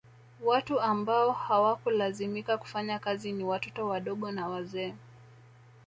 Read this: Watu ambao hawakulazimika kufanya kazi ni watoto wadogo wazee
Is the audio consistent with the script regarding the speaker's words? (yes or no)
no